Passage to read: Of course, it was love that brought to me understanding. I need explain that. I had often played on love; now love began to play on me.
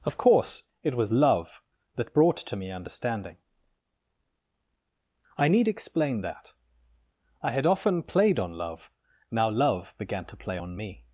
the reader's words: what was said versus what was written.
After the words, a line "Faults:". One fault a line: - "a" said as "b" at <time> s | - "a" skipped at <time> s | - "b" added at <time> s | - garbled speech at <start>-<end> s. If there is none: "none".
Of course, it was love that brought to me understanding. I need explain that. I had often played on love; now love began to play on me.
Faults:
none